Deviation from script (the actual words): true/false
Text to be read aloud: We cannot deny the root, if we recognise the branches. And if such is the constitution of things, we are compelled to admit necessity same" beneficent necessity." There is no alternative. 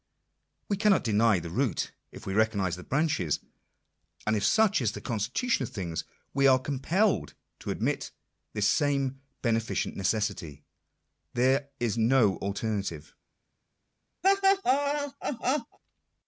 true